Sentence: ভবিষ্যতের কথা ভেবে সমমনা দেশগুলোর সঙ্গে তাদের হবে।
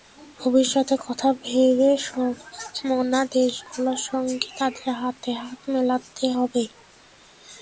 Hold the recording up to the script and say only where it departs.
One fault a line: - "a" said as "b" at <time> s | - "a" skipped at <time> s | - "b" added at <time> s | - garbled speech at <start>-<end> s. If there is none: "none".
- "হাতে হাত মেলাতে" added at 5.0 s